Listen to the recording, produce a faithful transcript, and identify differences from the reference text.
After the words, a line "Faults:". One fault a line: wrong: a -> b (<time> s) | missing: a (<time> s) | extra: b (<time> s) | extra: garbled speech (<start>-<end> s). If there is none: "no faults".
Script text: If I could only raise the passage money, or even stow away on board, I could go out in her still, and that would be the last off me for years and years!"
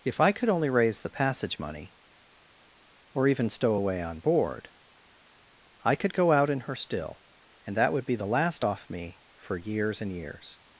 If I could only raise the passage money, or even stow away on board, I could go out in her still, and that would be the last off me for years and years!"
Faults:
no faults